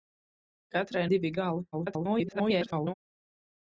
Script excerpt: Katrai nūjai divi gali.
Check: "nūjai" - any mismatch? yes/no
yes